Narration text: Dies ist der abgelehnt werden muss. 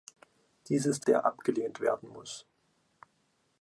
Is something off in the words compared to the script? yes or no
no